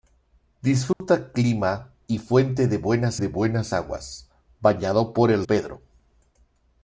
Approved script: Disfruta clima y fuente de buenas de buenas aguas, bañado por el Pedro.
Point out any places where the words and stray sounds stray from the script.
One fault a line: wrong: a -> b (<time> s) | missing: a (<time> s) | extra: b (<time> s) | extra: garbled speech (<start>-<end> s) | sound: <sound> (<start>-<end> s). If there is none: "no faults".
sound: dropout (0.9-1.0 s)